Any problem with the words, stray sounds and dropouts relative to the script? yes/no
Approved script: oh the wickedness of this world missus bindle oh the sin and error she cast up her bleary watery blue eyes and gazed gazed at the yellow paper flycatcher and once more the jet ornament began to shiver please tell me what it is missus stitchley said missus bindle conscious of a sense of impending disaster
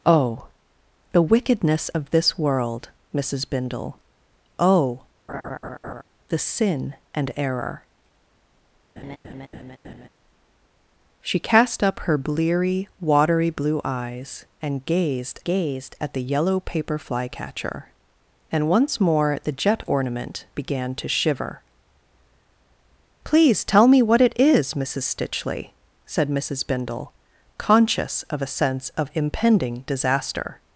yes